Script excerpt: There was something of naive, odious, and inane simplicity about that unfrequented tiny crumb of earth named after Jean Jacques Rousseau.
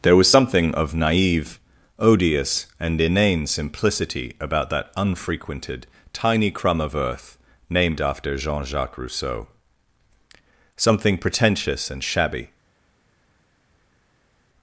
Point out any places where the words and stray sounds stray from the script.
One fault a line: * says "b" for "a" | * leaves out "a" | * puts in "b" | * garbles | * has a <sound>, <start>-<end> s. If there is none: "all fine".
* puts in "Something pretentious and shabby"